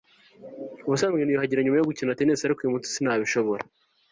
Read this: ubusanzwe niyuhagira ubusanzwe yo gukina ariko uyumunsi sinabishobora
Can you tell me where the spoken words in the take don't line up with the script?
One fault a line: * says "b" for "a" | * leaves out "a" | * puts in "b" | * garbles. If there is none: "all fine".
* says "nyuma" for "ubusanzwe"
* puts in "tennis"